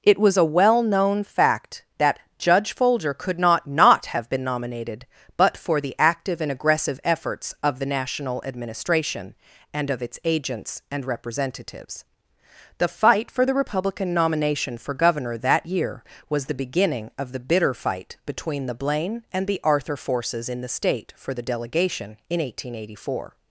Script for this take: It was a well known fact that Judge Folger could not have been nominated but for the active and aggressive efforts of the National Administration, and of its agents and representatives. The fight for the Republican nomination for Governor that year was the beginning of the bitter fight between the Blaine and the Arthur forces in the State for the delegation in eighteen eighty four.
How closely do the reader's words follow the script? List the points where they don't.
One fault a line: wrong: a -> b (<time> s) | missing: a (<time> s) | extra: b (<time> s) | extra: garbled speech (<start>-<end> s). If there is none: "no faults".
extra: not (3.7 s)